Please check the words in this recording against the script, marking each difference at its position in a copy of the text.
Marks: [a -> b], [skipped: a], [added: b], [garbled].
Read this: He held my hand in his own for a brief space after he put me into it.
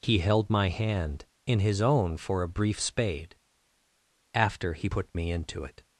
He held my hand in his own for a brief [space -> spade] after he put me into it.